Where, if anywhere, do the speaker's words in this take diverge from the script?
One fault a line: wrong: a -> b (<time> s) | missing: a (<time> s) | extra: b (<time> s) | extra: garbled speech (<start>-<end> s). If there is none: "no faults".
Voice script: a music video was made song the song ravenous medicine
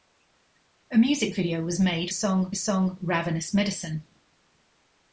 no faults